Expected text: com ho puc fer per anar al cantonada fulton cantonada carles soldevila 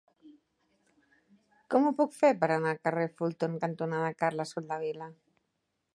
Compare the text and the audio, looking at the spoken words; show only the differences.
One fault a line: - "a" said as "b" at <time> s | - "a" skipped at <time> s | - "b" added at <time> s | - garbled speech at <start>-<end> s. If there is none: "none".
- "cantonada" said as "carrer" at 2.9 s